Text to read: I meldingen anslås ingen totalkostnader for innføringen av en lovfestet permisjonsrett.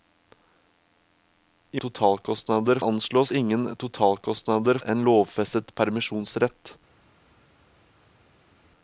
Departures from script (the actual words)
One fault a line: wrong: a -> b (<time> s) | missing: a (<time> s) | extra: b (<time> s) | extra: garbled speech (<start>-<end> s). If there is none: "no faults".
wrong: meldingen -> totalkostnader (1.8 s)
missing: for innføringen av (4.8 s)